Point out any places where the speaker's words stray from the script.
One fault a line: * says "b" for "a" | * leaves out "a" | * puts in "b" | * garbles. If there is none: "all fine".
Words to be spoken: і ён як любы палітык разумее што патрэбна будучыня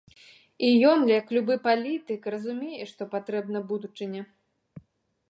all fine